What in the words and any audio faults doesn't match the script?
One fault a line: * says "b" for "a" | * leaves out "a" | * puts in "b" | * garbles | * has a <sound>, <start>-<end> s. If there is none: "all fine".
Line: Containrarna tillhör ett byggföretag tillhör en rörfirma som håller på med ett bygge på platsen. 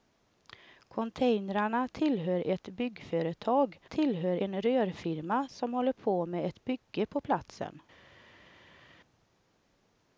all fine